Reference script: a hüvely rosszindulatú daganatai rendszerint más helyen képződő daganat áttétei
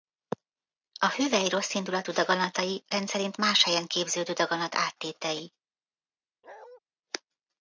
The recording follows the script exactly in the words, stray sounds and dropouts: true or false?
false